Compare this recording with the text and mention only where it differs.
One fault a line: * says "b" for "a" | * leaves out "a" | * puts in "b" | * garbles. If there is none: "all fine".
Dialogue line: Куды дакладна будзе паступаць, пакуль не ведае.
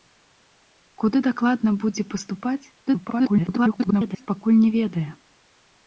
* garbles